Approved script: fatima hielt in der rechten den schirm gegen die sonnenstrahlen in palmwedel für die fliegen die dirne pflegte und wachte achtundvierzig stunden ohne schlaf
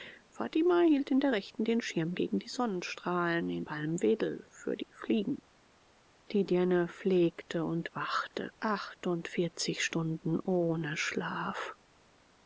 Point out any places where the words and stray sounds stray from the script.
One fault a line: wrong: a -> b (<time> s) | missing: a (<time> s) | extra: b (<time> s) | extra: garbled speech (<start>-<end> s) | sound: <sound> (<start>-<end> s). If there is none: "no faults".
no faults